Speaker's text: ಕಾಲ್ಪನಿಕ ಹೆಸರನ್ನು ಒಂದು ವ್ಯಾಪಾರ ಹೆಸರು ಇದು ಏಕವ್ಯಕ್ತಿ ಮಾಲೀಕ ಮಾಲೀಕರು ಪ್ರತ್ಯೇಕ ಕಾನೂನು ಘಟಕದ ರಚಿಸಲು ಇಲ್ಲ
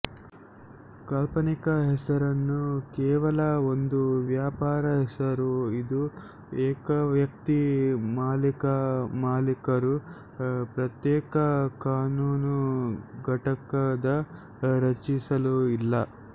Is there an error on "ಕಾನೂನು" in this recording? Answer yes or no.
no